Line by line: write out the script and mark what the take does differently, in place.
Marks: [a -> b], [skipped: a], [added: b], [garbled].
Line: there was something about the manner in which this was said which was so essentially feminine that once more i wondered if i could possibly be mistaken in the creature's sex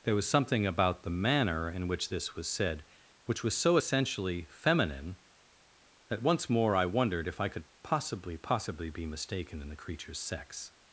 there was something about the manner in which this was said which was so essentially feminine that once more i wondered if i could possibly [added: possibly] be mistaken in the creature's sex